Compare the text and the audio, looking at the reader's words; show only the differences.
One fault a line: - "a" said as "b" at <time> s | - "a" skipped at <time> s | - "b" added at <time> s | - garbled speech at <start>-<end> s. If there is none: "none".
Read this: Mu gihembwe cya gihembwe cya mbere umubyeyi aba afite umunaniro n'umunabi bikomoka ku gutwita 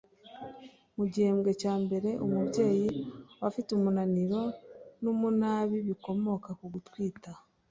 - "gihembwe cya" skipped at 1.7 s